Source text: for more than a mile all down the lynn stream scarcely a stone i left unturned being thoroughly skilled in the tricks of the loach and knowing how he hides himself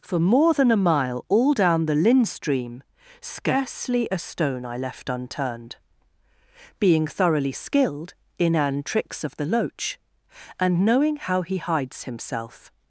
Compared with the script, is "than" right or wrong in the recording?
right